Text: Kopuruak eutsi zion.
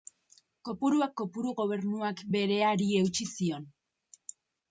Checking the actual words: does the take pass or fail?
fail